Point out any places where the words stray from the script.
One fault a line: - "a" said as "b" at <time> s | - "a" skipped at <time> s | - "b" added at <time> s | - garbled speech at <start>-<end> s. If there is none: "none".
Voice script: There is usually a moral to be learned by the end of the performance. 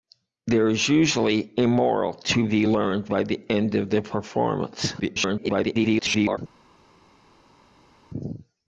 - garbled speech at 5.0-6.4 s